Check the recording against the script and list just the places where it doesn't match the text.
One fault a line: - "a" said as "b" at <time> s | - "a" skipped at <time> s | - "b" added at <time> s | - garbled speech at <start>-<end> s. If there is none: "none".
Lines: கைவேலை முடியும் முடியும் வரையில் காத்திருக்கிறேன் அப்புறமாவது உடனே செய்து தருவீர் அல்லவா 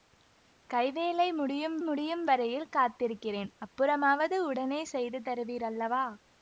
none